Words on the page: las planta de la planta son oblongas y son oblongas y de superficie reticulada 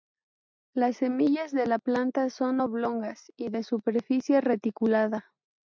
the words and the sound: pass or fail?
fail